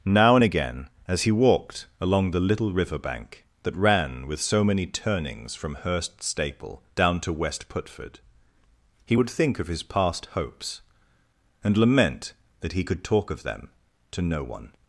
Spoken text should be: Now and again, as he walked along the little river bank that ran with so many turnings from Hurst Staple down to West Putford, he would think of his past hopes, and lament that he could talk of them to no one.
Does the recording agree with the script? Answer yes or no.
yes